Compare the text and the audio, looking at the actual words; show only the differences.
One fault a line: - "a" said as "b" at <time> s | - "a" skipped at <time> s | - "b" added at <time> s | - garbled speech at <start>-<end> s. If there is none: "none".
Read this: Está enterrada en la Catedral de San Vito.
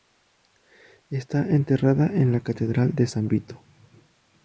none